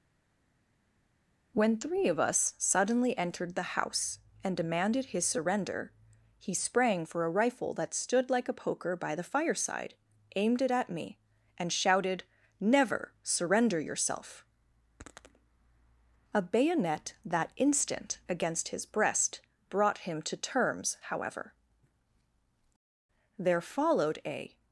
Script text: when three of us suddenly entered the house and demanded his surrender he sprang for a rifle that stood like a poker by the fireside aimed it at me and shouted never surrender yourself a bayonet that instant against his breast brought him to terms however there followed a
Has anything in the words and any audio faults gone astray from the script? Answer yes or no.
no